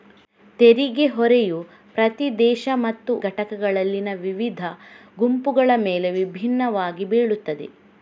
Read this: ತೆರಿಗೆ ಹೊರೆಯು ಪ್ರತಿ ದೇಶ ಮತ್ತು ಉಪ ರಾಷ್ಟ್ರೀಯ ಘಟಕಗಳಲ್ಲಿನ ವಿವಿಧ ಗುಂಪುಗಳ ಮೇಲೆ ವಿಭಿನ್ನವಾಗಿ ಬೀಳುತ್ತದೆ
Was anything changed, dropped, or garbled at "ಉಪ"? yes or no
yes